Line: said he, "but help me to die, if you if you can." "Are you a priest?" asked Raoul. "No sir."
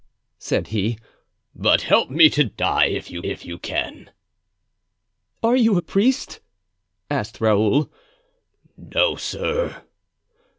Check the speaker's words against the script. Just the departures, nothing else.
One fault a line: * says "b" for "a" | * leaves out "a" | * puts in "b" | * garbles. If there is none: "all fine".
all fine